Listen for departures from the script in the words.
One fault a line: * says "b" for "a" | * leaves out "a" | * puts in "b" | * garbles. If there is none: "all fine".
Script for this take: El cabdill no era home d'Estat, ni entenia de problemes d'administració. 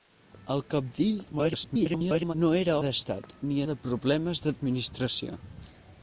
* garbles
* leaves out "home"
* leaves out "entenia"